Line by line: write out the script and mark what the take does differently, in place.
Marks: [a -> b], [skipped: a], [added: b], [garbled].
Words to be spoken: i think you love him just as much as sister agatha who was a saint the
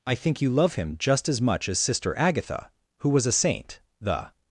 i think you love him just as much as sister agatha who was a saint the